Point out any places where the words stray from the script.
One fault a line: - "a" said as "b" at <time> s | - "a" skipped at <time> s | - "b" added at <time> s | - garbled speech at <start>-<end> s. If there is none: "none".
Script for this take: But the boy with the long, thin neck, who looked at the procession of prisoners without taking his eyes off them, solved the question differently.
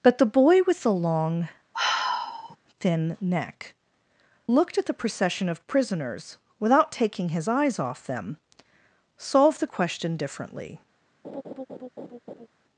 - "who" skipped at 3.7 s